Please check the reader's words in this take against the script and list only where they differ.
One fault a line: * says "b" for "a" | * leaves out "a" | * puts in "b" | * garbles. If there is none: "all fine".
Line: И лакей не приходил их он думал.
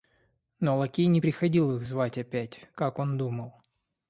* says "Но" for "И"
* puts in "звать опять как"